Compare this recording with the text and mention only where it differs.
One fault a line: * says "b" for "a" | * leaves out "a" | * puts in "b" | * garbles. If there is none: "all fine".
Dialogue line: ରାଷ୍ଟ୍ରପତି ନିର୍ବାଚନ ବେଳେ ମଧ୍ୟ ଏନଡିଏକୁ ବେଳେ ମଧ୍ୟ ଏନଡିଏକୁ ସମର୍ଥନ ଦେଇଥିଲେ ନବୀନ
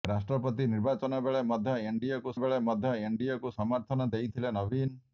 all fine